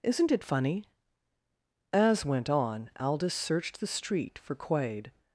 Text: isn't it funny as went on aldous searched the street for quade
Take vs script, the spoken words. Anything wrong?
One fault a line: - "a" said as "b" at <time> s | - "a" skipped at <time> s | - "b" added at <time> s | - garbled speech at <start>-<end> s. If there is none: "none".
none